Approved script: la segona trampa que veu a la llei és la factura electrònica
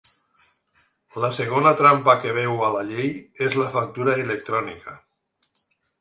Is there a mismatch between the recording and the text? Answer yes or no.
no